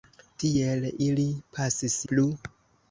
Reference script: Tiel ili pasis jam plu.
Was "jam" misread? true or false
true